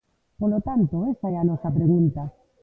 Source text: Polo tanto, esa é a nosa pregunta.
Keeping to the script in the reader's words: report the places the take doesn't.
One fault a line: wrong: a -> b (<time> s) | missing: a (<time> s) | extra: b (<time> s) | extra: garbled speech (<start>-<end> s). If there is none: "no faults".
no faults